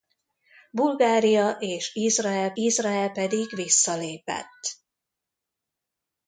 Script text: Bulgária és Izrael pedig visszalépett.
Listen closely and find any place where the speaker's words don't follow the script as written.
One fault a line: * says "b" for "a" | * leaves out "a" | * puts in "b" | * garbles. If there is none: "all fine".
* puts in "Izrael"